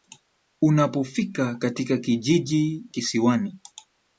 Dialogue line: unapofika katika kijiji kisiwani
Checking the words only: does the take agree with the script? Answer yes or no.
yes